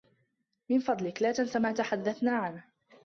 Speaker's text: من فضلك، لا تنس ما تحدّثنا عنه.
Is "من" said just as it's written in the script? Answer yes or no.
yes